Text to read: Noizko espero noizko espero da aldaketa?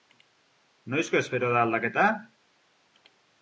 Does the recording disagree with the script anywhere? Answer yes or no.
yes